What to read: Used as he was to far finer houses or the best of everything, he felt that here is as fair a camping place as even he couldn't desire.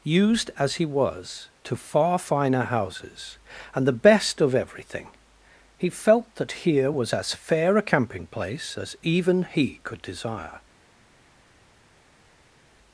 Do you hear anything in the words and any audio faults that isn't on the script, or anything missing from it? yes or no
yes